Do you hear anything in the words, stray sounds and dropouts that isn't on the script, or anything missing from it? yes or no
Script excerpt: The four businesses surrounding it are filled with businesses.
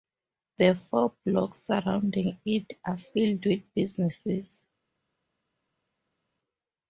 yes